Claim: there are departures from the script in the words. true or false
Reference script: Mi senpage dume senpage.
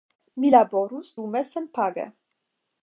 true